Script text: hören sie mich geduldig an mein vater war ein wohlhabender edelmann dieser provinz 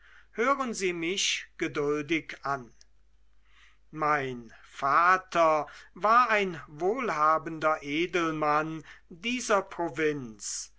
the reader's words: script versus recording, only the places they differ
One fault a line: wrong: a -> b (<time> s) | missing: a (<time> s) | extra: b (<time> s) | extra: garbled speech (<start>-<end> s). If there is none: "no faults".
no faults